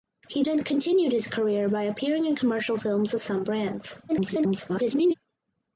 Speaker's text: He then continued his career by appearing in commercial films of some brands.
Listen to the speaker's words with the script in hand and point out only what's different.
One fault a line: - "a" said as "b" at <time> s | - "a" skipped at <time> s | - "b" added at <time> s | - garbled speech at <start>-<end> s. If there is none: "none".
- garbled speech at 4.1-5.1 s